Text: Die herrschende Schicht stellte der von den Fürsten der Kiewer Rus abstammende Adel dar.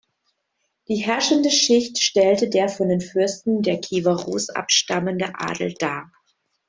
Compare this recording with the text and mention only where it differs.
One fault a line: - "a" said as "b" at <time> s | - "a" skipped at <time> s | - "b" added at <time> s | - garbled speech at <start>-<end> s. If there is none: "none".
none